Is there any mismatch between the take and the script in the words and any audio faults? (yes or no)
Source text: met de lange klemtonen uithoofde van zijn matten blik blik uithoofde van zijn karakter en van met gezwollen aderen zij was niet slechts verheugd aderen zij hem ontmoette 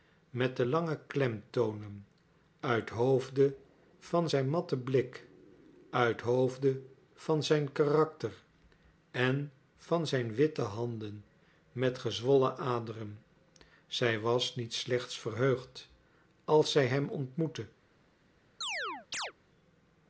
yes